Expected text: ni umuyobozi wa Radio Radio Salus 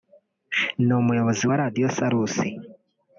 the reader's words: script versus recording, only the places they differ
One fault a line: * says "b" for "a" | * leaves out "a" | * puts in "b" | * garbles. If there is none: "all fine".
* leaves out "Radio"